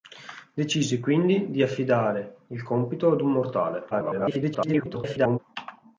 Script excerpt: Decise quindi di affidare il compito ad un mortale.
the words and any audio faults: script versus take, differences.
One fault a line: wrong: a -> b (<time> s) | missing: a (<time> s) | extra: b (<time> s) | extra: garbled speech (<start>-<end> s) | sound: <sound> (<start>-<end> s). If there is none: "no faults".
extra: garbled speech (3.9-5.4 s)